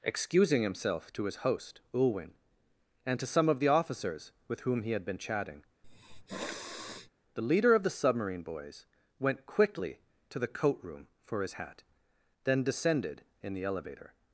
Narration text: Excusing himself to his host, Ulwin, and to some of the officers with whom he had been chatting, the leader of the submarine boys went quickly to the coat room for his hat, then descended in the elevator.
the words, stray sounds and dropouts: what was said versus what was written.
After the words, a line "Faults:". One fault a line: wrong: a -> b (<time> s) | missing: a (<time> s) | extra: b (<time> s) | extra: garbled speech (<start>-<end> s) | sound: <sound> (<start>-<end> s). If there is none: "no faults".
Excusing himself to his host, Ulwin, and to some of the officers with whom he had been chatting, the leader of the submarine boys went quickly to the coat room for his hat, then descended in the elevator.
Faults:
sound: sniff (5.8-7.1 s)